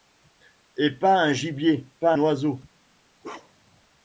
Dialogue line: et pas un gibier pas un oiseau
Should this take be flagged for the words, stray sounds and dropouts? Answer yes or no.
yes